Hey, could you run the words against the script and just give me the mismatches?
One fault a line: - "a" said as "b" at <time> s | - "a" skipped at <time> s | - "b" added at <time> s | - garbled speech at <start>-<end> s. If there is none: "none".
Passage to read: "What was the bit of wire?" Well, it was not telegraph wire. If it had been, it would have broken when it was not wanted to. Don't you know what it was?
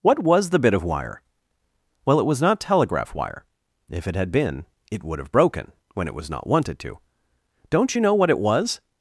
none